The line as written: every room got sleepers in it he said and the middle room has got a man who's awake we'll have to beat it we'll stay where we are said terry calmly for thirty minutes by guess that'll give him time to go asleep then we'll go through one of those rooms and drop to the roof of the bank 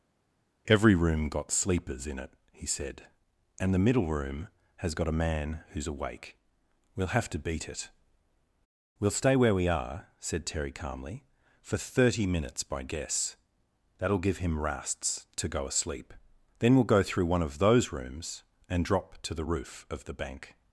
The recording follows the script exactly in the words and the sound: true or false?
false